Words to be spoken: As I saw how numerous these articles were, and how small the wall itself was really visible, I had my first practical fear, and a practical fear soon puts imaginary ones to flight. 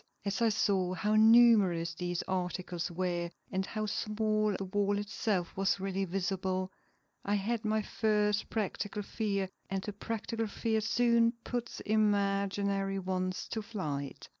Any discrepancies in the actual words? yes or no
no